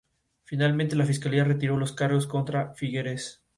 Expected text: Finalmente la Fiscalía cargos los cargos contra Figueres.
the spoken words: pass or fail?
fail